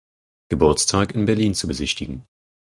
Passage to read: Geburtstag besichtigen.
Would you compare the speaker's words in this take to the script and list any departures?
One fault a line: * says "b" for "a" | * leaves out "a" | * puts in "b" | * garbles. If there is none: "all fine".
* puts in "in Berlin zu"